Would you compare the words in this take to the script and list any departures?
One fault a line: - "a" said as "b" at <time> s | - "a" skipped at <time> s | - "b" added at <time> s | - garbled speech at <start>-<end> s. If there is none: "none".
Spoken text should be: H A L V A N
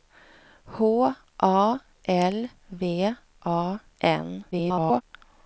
- garbled speech at 4.5-5.0 s